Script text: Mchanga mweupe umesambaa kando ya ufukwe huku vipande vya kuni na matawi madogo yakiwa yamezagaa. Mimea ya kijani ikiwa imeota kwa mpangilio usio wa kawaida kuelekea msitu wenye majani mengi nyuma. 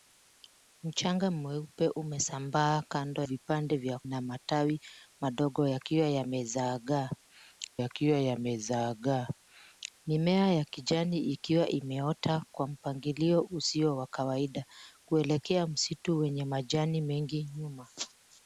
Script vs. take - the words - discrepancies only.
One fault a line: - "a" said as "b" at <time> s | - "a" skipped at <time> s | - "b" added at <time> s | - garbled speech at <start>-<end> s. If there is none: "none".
- "ya ufukwe huku" skipped at 3.2 s
- "kuni" skipped at 4.0 s
- "yakiwa yamezagaa" added at 7.8 s